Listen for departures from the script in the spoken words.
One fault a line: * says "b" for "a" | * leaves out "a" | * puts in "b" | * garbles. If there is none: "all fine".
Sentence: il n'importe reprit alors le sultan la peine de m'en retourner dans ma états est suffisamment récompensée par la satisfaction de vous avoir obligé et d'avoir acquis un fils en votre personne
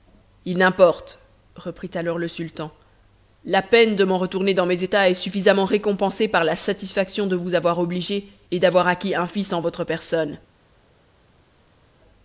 * says "mes" for "ma"